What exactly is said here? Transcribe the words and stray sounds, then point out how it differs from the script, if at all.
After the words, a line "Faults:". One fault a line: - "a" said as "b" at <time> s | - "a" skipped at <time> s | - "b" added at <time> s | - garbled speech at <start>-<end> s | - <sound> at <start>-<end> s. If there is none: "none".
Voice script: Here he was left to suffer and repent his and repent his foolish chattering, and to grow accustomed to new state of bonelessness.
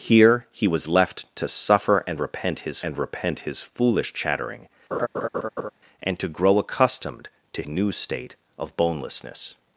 Here he was left to suffer and repent his and repent his foolish chattering, and to grow accustomed to new state of bonelessness.
Faults:
- laugh at 4.9-5.7 s